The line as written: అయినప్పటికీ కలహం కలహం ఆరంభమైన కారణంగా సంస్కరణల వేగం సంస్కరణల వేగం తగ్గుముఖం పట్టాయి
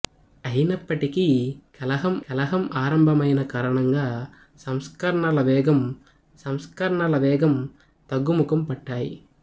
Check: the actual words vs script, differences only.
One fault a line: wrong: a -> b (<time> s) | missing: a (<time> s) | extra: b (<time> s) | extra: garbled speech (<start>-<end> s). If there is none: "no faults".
no faults